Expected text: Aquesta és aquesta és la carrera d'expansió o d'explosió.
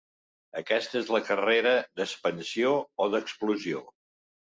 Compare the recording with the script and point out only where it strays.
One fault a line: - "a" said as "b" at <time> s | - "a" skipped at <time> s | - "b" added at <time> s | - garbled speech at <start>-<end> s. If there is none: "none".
- "aquesta és" skipped at 1.1 s